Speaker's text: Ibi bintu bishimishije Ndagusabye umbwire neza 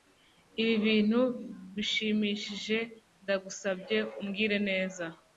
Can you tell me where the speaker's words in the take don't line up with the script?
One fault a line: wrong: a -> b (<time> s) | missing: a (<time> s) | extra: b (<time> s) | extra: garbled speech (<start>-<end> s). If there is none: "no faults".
no faults